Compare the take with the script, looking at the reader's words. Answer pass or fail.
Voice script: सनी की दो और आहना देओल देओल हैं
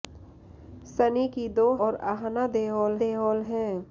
pass